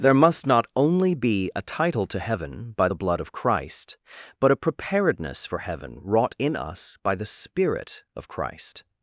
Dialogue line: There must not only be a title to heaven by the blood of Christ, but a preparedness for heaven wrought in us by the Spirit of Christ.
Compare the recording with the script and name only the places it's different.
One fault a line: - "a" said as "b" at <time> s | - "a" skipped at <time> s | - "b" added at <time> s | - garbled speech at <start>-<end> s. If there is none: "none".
none